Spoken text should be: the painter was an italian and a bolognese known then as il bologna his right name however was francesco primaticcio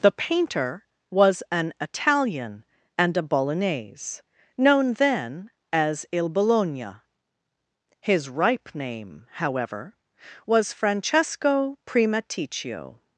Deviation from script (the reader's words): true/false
true